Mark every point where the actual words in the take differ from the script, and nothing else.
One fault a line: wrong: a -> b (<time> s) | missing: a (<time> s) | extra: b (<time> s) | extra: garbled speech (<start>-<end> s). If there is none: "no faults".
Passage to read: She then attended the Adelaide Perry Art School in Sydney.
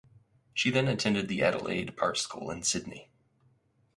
missing: Perry (2.0 s)